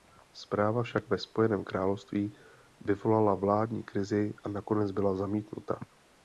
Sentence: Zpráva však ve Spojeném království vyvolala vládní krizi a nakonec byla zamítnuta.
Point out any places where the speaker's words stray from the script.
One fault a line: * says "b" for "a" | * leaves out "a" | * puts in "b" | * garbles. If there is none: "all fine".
all fine